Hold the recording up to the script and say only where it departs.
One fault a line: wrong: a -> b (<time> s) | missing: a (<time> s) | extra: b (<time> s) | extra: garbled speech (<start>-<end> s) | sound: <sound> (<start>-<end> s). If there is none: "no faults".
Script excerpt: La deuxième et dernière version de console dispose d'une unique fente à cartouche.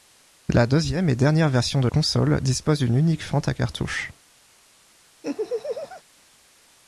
sound: laugh (5.2-6.0 s)